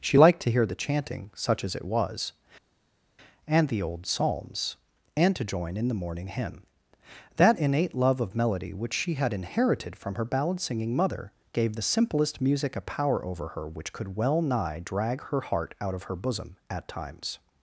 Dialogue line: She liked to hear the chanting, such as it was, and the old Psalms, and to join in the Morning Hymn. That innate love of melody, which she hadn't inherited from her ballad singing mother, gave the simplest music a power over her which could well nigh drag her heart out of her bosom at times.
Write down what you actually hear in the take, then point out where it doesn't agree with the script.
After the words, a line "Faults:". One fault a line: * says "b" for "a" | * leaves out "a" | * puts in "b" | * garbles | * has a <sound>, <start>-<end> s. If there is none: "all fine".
She liked to hear the chanting, such as it was, and the old Psalms, and to join in the Morning Hymn. That innate love of melody, which she had inherited from her ballad singing mother, gave the simplest music a power over her which could well nigh drag her heart out of her bosom at times.
Faults:
* says "had" for "hadn't"